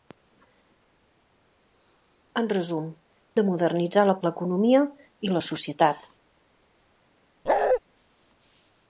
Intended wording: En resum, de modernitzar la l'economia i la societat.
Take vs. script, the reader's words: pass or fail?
pass